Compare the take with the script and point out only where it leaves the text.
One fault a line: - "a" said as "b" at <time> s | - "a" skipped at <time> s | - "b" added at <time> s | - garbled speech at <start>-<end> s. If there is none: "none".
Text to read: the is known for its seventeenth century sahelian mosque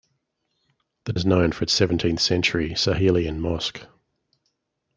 none